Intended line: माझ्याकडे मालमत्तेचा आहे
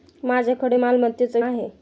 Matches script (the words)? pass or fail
pass